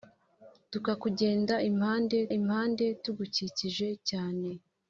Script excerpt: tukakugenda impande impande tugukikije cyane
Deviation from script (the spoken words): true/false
false